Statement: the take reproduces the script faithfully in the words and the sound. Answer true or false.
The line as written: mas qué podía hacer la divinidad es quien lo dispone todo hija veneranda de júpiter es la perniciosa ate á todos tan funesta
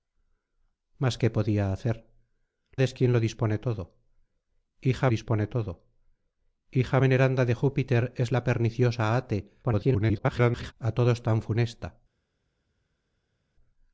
false